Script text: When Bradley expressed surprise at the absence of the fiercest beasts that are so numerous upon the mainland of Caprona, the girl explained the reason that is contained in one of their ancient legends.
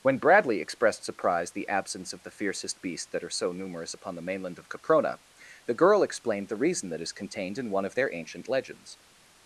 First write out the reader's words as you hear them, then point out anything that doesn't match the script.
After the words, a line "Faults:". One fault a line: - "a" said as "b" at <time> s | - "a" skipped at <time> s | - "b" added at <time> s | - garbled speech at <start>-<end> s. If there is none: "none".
When Bradley expressed surprise the absence of the fiercest beasts that are so numerous upon the mainland of Caprona, the girl explained the reason that is contained in one of their ancient legends.
Faults:
- "at" skipped at 1.5 s